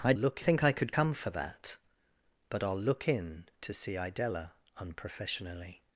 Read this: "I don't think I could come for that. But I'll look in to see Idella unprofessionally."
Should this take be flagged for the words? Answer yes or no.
yes